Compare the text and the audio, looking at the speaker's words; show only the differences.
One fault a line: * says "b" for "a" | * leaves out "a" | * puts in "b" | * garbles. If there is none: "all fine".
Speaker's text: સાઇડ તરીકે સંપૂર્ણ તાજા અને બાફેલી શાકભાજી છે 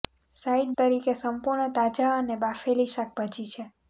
all fine